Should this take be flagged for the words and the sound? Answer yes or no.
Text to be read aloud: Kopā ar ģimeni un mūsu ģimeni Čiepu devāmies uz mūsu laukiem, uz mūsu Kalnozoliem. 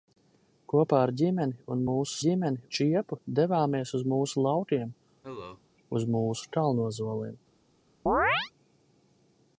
yes